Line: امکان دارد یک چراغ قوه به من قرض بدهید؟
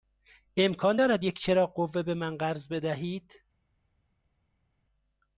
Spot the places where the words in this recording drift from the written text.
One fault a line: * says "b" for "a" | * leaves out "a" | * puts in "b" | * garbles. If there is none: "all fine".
all fine